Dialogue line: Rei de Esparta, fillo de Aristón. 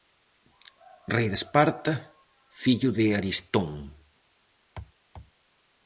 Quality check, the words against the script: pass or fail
pass